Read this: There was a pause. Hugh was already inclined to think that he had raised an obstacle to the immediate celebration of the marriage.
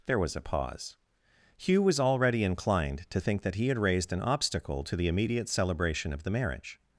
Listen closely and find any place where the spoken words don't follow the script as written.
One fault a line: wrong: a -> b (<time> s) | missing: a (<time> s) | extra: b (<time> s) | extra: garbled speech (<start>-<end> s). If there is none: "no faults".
no faults